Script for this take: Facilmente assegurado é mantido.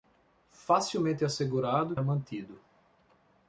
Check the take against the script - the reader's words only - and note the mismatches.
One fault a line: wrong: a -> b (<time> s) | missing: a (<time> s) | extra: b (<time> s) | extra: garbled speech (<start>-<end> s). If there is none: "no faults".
no faults